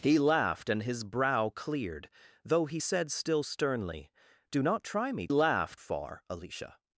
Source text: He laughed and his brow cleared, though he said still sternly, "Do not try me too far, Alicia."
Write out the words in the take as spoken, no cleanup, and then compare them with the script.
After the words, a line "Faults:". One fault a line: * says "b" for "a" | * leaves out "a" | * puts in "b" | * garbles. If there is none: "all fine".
He laughed and his brow cleared, though he said still sternly, "Do not try me laughed far, Alicia."
Faults:
* says "laughed" for "too"